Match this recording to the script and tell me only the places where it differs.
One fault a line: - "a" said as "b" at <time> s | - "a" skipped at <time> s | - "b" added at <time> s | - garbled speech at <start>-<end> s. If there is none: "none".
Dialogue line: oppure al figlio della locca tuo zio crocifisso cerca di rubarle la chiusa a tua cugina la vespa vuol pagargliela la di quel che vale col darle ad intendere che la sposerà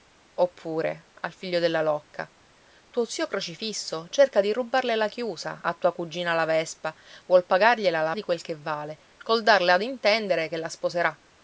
none